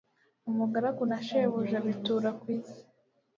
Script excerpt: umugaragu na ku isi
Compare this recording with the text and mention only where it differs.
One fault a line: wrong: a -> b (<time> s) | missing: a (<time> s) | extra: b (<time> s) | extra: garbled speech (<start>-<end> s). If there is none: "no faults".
extra: shebuja bitura (1.3 s)